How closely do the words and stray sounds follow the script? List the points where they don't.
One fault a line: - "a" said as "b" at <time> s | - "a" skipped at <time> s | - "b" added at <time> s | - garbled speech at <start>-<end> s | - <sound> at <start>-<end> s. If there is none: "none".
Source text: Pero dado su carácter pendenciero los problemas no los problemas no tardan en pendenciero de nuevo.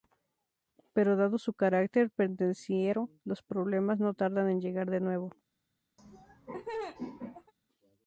- "los problemas no" skipped at 4.1 s
- "pendenciero" said as "llegar" at 4.6 s
- laugh at 6.0-7.5 s